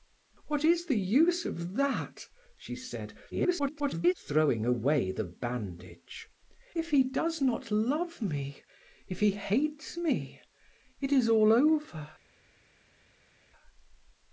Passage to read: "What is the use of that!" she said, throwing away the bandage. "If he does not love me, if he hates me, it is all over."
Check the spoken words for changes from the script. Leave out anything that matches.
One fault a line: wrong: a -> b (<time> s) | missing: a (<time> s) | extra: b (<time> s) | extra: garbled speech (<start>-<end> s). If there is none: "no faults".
extra: garbled speech (3.3-4.1 s)